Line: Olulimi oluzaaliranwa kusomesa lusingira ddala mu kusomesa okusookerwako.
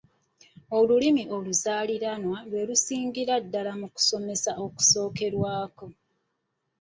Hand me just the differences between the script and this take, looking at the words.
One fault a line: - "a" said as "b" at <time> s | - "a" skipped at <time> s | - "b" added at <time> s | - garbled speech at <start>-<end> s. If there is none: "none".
- "kusomesa" said as "lwe" at 2.5 s